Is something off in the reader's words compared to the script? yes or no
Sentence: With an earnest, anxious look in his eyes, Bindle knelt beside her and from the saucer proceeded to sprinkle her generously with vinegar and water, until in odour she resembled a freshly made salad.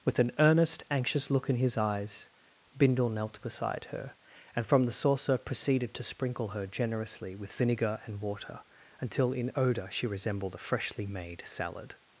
no